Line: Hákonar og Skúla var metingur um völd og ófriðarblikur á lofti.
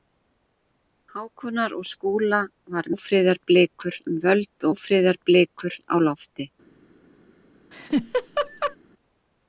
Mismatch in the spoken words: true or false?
true